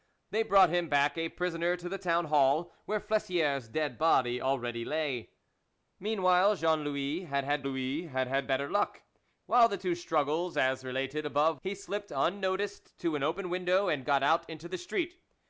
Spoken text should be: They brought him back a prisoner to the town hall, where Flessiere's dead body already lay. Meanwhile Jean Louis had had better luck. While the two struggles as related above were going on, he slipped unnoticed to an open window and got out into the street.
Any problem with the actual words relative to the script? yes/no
yes